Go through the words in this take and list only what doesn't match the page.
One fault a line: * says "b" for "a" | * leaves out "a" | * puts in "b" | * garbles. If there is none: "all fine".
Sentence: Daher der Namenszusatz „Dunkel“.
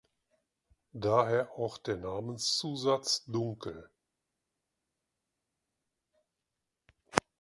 * puts in "auch"